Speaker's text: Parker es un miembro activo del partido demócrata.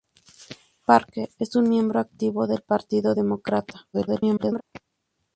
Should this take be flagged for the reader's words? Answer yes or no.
yes